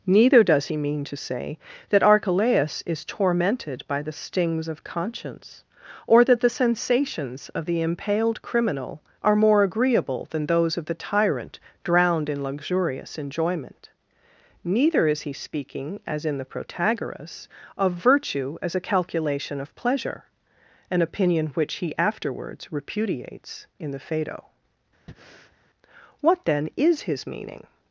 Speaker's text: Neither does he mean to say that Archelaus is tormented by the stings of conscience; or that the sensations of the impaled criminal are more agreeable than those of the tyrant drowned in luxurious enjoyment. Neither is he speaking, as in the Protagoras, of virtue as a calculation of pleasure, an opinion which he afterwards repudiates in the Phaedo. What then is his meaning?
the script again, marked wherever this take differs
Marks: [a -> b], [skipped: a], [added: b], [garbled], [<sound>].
Neither does he mean to say that Archelaus is tormented by the stings of conscience; or that the sensations of the impaled criminal are more agreeable than those of the tyrant drowned in luxurious enjoyment. Neither is he speaking, as in the Protagoras, of virtue as a calculation of pleasure, an opinion which he afterwards repudiates in the Phaedo. [breath] What then is his meaning?